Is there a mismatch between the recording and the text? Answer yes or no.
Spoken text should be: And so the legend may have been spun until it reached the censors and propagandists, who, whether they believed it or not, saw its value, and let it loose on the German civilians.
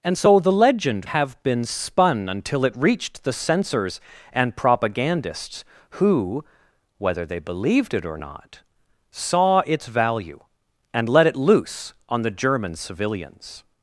yes